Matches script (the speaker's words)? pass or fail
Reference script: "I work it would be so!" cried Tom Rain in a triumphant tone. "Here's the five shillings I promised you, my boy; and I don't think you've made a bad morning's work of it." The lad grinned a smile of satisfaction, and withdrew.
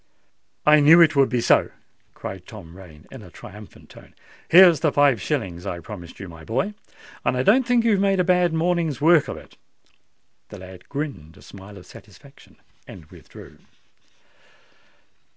fail